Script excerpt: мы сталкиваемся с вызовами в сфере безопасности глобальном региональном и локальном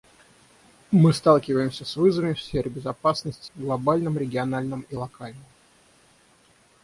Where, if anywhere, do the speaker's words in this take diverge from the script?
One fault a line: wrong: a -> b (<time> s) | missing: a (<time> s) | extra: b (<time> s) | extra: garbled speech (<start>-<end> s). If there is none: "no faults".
no faults